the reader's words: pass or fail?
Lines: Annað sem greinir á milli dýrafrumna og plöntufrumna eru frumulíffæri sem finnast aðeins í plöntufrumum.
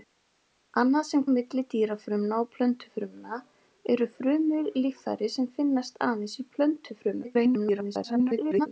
fail